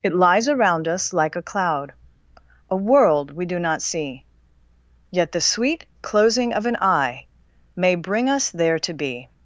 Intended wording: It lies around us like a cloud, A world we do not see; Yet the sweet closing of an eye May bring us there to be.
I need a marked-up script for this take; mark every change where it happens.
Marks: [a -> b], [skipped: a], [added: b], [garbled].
It lies around us like a cloud, A world we do not see; Yet the sweet closing of an eye May bring us there to be.